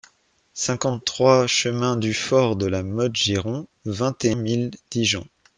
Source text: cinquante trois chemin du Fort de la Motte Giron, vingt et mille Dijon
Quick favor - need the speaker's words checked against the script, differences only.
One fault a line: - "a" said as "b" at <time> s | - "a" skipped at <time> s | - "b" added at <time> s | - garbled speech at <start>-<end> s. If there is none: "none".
none